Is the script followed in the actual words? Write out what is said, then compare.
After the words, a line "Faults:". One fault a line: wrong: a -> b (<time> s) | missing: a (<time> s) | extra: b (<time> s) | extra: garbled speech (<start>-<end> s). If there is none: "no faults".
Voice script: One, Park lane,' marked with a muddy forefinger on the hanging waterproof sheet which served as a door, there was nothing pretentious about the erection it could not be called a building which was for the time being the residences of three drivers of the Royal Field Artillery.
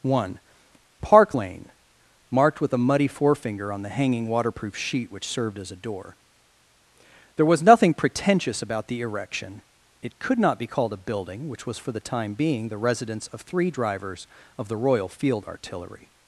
One, Park lane,' marked with a muddy forefinger on the hanging waterproof sheet which served as a door, there was nothing pretentious about the erection it could not be called a building which was for the time being the residence of three drivers of the Royal Field Artillery.
Faults:
wrong: residences -> residence (12.8 s)